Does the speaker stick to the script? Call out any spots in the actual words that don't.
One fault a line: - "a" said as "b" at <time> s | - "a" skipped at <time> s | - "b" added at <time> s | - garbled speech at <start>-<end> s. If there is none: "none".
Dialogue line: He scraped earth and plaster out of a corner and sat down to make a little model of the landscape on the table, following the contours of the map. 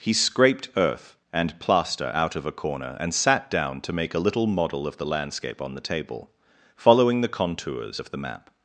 none